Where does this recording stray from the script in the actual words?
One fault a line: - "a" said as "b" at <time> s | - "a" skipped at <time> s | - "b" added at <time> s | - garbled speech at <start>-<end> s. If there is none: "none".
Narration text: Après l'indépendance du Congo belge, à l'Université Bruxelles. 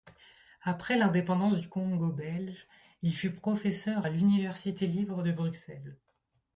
- "il fut professeur" added at 3.0 s
- "libre de" added at 4.9 s